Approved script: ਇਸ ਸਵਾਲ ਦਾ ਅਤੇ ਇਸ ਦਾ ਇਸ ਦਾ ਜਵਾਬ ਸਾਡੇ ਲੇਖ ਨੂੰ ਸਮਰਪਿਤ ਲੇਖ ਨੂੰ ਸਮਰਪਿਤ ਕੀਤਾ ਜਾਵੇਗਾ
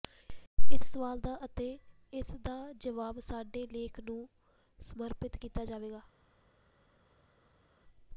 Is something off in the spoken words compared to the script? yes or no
yes